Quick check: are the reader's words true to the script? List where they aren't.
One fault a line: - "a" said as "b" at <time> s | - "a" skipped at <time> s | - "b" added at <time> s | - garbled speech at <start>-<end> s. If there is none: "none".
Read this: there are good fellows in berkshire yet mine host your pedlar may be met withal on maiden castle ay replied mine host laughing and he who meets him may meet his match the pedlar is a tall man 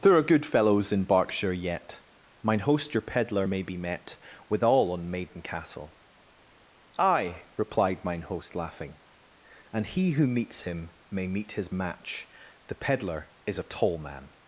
none